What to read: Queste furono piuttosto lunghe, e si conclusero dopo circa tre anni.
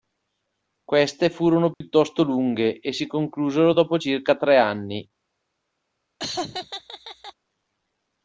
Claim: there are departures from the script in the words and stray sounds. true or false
true